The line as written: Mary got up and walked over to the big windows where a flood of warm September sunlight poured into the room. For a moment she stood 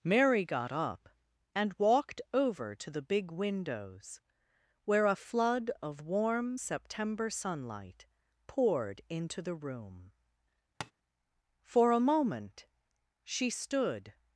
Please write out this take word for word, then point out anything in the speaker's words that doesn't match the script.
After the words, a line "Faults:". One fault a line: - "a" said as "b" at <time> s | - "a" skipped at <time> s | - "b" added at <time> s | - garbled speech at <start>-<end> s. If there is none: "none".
Mary got up and walked over to the big windows where a flood of warm September sunlight poured into the room. For a moment she stood
Faults:
none